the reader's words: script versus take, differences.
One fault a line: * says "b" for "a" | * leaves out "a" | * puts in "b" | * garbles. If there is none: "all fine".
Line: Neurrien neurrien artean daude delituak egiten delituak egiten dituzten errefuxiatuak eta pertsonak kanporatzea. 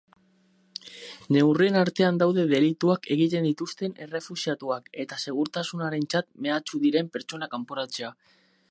* leaves out "neurrien"
* leaves out "delituak egiten"
* puts in "segurtasunarentzat mehatxu diren"